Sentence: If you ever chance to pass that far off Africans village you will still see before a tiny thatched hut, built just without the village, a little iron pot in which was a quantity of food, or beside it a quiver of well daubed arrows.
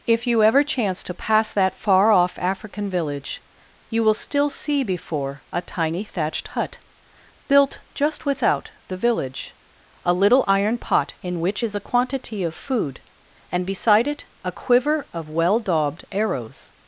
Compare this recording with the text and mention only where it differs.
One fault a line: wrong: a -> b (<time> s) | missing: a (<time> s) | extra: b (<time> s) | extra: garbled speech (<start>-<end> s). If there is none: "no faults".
wrong: Africans -> African (2.4 s)
wrong: was -> is (11.6 s)
wrong: or -> and (13.5 s)